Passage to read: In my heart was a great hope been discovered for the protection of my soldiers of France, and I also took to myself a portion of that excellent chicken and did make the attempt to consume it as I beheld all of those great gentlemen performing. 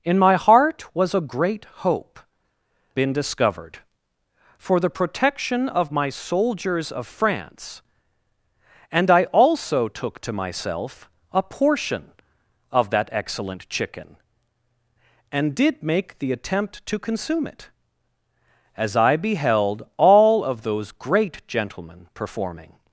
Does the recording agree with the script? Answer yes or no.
yes